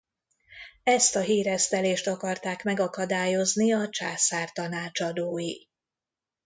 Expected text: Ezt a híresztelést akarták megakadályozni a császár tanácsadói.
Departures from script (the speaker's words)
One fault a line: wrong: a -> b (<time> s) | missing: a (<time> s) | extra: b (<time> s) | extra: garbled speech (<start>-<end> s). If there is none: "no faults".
no faults